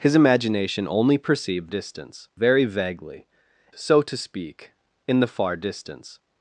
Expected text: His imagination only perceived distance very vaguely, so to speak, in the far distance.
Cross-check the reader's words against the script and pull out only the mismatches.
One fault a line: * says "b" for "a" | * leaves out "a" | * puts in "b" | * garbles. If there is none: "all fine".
all fine